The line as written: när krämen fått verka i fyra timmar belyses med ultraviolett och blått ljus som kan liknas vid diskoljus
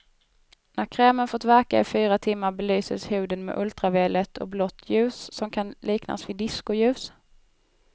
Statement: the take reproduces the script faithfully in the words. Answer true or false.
false